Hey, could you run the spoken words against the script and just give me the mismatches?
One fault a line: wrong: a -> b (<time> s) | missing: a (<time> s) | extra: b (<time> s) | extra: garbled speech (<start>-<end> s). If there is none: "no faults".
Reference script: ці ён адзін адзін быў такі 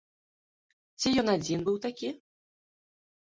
missing: адзін (1.6 s)